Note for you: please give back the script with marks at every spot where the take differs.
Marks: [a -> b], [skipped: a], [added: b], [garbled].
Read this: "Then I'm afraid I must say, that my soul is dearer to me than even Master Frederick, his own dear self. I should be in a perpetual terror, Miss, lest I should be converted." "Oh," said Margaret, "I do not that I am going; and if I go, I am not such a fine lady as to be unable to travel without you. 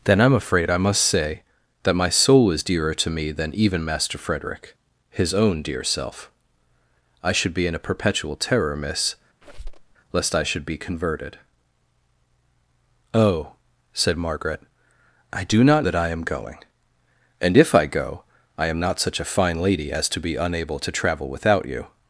"Then I'm afraid I must say, that my soul is dearer to me than even Master Frederick, his own dear self. I should be in a perpetual terror, Miss, lest I should be converted." "Oh," said Margaret, "I do not that I am going; and if I go, I am not such a fine lady as to be unable to travel without you.